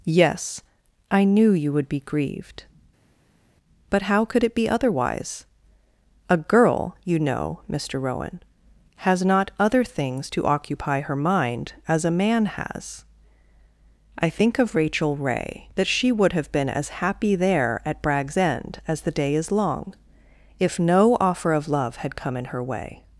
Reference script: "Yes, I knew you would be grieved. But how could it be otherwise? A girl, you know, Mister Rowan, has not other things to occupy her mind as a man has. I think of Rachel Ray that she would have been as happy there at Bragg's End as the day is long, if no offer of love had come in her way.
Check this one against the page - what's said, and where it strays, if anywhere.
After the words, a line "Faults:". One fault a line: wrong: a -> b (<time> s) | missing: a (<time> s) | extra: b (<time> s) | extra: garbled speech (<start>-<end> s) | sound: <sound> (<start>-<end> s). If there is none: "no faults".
"Yes, I knew you would be grieved. But how could it be otherwise? A girl, you know, Mister Rowan, has not other things to occupy her mind as a man has. I think of Rachel Ray that she would have been as happy there at Bragg's End as the day is long, if no offer of love had come in her way.
Faults:
no faults